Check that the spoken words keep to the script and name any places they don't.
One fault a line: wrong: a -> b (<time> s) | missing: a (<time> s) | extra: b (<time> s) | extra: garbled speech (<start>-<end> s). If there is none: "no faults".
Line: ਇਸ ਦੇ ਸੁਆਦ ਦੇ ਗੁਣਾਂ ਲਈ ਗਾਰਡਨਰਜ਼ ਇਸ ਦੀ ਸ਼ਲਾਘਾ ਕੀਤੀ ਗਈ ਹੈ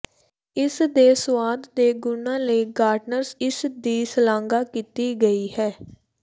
no faults